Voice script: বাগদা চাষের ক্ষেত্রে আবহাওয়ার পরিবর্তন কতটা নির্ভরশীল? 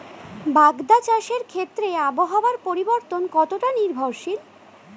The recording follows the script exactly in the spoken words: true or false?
true